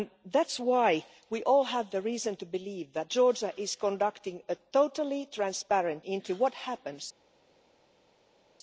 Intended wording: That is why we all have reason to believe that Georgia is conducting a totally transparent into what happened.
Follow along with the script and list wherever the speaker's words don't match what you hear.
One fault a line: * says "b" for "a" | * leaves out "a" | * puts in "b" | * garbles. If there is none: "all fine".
all fine